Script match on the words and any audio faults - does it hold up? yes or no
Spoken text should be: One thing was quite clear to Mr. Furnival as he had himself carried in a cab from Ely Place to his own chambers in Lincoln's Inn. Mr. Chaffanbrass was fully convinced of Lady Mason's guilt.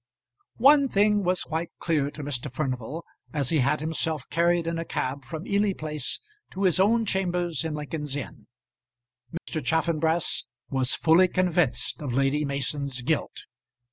no